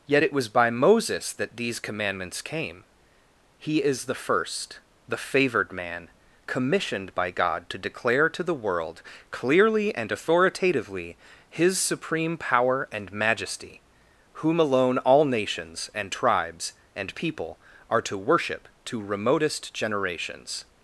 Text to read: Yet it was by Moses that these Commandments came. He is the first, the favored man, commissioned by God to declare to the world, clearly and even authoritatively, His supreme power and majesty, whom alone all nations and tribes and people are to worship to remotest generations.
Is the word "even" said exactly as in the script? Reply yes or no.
no